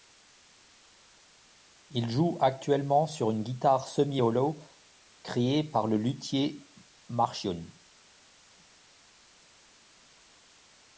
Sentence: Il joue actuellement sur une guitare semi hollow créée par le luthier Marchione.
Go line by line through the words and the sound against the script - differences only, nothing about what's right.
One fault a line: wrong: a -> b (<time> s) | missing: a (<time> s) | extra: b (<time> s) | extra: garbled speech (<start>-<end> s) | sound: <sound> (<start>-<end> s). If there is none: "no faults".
no faults